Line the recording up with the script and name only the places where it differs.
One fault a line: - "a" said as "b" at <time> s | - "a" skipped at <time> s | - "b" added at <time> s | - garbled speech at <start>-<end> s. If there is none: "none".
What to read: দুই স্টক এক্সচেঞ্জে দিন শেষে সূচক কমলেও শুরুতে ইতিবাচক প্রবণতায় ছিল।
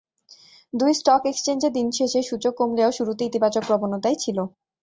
none